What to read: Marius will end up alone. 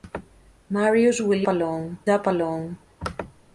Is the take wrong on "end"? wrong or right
wrong